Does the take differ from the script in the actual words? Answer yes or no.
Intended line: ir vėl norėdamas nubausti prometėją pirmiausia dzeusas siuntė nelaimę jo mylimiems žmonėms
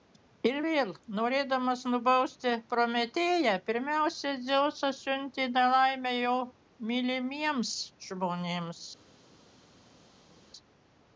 no